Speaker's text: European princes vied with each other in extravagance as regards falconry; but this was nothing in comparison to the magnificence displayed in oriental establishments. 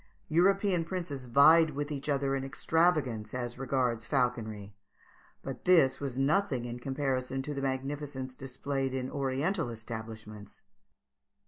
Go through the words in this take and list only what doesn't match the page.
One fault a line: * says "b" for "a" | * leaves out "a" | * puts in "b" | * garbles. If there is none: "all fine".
all fine